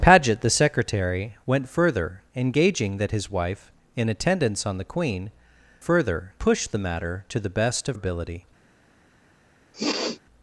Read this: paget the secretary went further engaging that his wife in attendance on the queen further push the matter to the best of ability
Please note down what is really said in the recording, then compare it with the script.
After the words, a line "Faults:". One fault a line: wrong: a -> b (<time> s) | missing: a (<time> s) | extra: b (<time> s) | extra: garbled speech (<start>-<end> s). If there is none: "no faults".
paget the secretary went further engaging that his wife in attendance on the queen further push the matter to the best of ability
Faults:
no faults